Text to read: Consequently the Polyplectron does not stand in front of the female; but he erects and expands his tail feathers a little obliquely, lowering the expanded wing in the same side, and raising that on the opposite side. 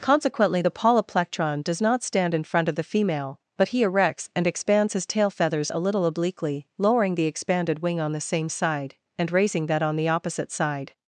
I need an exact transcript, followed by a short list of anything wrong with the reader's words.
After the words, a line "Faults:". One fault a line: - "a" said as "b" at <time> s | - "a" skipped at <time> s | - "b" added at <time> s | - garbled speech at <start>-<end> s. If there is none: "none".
Consequently the Polyplectron does not stand in front of the female; but he erects and expands his tail feathers a little obliquely, lowering the expanded wing on the same side, and raising that on the opposite side.
Faults:
- "in" said as "on" at 8.0 s